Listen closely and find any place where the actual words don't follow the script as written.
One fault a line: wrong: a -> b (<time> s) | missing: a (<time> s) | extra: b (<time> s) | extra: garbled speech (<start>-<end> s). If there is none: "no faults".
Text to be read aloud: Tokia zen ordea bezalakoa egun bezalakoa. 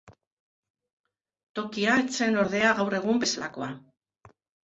extra: ez (2.0 s)
wrong: bezalakoa -> gaur (2.8 s)